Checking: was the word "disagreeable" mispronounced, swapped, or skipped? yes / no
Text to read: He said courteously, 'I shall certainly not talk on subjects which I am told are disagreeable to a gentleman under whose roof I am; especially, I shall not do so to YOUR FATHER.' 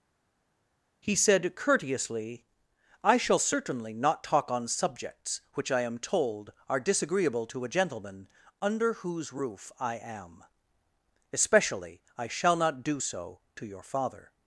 no